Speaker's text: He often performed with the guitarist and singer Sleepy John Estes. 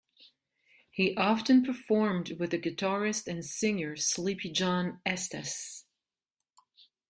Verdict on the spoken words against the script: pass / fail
pass